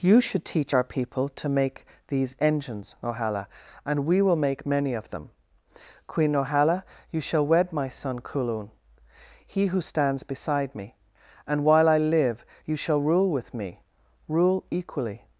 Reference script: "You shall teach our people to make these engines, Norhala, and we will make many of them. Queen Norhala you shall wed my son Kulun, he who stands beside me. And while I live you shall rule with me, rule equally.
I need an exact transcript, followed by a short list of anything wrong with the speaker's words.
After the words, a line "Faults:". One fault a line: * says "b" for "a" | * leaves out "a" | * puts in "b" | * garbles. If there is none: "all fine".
"You should teach our people to make these engines, Norhala, and we will make many of them. Queen Norhala you shall wed my son Kulun, he who stands beside me. And while I live you shall rule with me, rule equally.
Faults:
* says "should" for "shall"